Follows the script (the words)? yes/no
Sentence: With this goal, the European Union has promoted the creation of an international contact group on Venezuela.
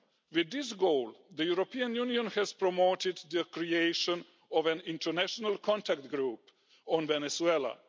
yes